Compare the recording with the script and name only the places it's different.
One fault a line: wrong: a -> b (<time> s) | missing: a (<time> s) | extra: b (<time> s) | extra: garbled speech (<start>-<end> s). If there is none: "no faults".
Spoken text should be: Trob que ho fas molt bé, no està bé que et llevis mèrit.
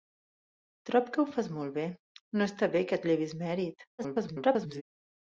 extra: garbled speech (4.0-4.8 s)